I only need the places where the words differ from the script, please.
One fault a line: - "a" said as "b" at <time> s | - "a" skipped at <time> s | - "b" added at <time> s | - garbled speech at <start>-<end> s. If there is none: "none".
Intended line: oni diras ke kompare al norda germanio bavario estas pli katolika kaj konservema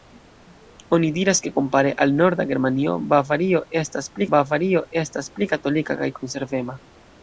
- "bavario estas pli" added at 4.3 s